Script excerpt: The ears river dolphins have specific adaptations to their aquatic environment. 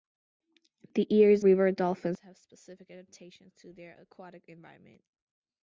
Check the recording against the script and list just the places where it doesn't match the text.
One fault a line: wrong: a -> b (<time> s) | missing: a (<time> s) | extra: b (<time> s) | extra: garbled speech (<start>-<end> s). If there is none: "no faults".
no faults